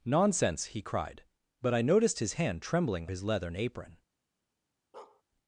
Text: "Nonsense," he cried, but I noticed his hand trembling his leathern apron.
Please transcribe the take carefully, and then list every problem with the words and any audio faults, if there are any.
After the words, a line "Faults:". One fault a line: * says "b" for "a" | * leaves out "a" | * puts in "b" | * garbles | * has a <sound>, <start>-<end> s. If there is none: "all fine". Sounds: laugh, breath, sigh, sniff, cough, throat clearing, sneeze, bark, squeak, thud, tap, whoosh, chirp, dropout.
"Nonsense," he cried, but I noticed his hand trembling his leathern apron.
Faults:
* has a bark, 4.9-5.2 s